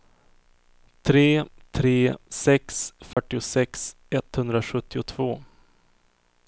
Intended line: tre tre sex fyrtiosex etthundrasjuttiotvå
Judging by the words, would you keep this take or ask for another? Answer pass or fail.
pass